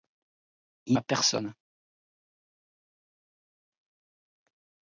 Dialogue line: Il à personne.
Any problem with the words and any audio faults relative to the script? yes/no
no